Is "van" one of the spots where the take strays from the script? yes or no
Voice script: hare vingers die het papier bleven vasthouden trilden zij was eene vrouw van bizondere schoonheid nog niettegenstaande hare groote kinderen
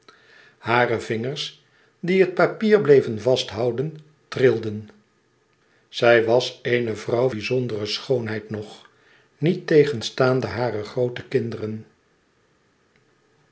yes